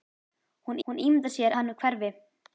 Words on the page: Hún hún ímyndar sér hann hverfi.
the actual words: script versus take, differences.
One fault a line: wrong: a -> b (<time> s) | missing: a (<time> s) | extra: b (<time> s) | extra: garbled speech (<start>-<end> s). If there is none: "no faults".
no faults